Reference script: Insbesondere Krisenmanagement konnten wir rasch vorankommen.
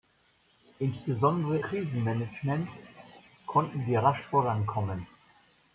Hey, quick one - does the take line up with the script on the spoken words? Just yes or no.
yes